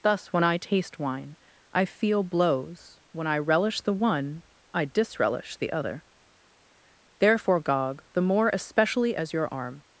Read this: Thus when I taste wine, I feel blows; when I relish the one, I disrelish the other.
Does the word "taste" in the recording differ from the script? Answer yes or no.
no